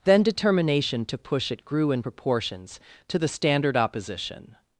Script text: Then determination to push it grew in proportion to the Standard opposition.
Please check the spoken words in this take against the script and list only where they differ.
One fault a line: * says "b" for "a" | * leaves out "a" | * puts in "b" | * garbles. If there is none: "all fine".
* says "proportions" for "proportion"